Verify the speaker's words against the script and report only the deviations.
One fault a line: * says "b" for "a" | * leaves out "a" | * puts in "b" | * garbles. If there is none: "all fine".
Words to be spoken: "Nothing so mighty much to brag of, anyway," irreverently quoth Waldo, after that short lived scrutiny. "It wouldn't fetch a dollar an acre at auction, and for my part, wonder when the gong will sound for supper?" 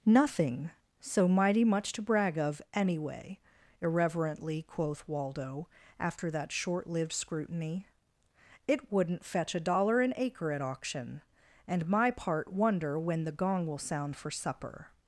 * leaves out "for"